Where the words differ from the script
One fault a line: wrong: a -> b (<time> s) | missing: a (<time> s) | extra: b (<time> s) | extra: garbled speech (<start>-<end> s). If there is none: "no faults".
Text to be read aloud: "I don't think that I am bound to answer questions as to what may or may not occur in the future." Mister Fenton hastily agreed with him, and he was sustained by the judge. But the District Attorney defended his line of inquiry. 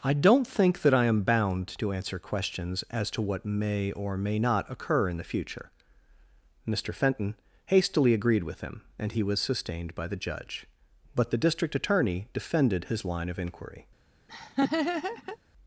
no faults